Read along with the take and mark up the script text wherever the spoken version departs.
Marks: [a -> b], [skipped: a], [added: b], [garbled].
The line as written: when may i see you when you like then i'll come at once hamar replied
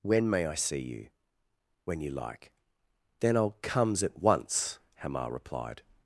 when may i see you when you like then i'll [come -> comes] at once hamar replied